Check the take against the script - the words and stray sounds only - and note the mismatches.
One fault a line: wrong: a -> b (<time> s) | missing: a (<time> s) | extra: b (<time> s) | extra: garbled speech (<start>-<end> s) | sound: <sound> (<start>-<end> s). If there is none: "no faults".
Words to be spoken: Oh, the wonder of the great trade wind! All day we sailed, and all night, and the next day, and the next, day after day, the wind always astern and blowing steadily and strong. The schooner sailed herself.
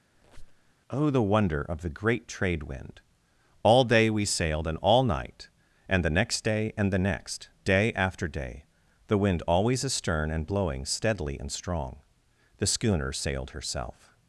sound: squeak (0.1-0.7 s)